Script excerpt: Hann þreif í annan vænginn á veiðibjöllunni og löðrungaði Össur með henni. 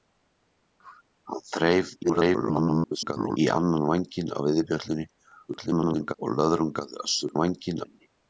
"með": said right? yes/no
no